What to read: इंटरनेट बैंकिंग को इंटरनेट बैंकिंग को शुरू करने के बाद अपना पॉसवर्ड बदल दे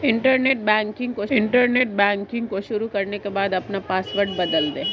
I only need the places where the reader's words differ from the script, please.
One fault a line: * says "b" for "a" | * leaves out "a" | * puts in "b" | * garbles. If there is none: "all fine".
all fine